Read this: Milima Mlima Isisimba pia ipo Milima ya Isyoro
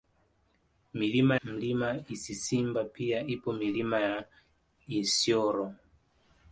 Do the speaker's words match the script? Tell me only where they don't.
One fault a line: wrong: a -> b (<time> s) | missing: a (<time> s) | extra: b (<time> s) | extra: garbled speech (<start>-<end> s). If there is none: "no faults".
no faults